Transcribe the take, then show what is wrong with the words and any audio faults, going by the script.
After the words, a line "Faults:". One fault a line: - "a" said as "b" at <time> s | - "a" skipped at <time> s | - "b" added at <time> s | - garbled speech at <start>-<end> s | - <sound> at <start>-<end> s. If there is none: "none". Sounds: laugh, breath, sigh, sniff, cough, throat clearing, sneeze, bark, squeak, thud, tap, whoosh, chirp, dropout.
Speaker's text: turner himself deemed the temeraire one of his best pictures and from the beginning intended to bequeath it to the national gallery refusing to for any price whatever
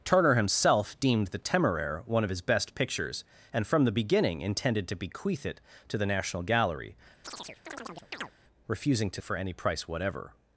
turner himself deemed the temeraire one of his best pictures and from the beginning intended to bequeath it to the national gallery refusing to for any price whatever
Faults:
- chirp at 7.2-8.3 s